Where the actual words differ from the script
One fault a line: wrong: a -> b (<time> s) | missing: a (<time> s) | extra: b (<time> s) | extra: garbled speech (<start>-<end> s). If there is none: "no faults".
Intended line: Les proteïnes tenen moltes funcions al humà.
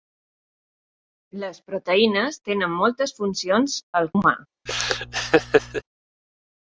no faults